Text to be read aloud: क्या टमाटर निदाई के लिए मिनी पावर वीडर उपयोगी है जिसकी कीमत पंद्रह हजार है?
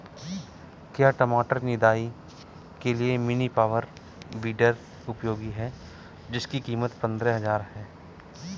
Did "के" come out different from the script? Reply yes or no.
no